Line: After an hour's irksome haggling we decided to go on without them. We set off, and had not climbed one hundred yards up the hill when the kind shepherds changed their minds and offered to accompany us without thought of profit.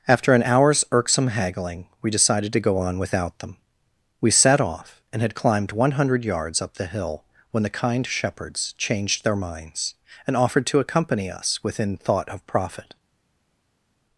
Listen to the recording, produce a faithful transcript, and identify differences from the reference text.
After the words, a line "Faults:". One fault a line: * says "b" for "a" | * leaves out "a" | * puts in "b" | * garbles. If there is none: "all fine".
After an hour's irksome haggling we decided to go on without them. We set off, and had climbed one hundred yards up the hill when the kind shepherds changed their minds and offered to accompany us within thought of profit.
Faults:
* leaves out "not"
* says "within" for "without"